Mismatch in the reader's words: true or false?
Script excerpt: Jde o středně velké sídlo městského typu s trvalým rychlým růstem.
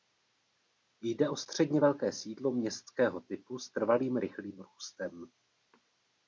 false